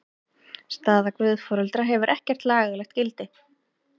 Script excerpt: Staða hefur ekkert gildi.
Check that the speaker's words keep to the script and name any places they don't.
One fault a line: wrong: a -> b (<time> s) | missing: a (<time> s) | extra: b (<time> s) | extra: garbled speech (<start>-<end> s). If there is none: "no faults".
extra: guðforeldra (1.2 s)
extra: lagalegt (2.5 s)